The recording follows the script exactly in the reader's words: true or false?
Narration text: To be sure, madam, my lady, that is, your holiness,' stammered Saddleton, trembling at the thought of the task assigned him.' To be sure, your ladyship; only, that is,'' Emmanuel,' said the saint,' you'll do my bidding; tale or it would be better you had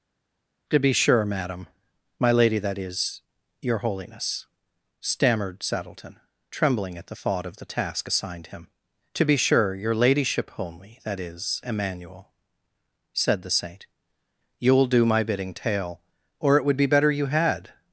true